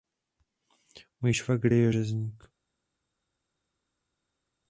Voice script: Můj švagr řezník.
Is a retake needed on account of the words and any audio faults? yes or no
yes